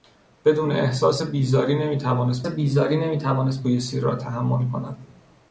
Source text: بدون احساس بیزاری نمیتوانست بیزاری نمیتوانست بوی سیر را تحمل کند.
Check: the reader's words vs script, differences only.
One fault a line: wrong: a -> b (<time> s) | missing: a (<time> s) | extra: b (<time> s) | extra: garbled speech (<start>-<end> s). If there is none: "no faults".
no faults